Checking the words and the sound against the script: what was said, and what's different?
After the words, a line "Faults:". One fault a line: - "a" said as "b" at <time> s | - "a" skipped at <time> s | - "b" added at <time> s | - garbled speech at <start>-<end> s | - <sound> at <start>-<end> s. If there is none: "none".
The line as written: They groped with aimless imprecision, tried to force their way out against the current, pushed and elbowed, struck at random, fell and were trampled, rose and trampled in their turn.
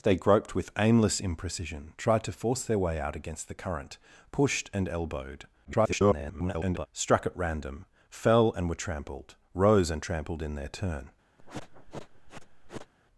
They groped with aimless imprecision, tried to force their way out against the current, pushed and elbowed, [garbled] struck at random, fell and were trampled, rose and trampled in their turn.
Faults:
- garbled speech at 5.6-6.9 s
- sniff at 11.4-12.9 s